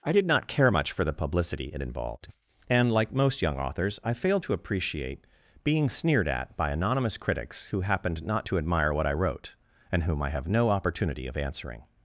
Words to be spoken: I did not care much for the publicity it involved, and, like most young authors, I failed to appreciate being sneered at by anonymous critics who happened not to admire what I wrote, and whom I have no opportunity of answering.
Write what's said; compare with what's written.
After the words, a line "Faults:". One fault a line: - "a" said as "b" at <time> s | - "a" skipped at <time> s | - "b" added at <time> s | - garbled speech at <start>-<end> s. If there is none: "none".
I did not care much for the publicity it involved, and, like most young authors, I failed to appreciate being sneered at by anonymous critics who happened not to admire what I wrote, and whom I have no opportunity of answering.
Faults:
none